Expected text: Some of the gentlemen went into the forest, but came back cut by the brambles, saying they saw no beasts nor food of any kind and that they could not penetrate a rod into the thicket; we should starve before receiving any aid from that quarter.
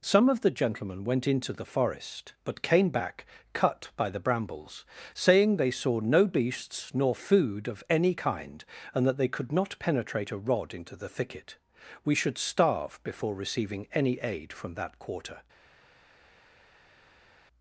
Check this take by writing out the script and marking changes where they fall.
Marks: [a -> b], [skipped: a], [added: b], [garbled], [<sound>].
Some of the gentlemen went into the forest, but came back cut by the brambles, saying they saw no beasts nor food of any kind and that they could not penetrate a rod into the thicket; we should starve before receiving any aid from that quarter.